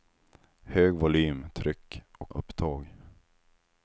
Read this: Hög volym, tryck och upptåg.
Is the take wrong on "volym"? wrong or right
right